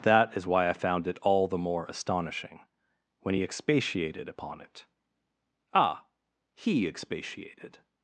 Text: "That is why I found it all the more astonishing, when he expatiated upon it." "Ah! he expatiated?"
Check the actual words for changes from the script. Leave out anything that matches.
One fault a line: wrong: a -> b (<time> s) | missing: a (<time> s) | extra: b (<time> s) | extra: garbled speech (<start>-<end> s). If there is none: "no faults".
no faults